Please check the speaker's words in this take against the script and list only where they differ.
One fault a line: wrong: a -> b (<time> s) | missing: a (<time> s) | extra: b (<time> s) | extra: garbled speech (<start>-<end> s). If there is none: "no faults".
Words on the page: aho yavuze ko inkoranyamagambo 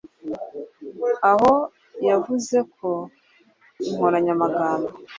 no faults